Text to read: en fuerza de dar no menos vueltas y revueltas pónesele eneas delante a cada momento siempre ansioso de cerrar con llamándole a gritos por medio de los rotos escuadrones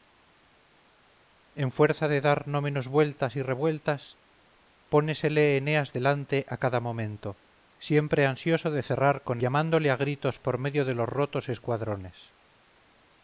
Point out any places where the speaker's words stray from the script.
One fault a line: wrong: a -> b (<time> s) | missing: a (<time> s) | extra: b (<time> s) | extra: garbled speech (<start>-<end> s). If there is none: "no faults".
no faults